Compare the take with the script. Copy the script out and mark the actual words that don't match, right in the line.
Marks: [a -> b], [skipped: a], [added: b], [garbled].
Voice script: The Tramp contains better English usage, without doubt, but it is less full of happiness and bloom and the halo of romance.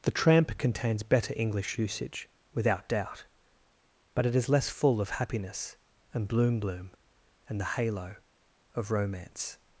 The Tramp contains better English usage, without doubt, but it is less full of happiness and bloom [added: bloom] and the halo of romance.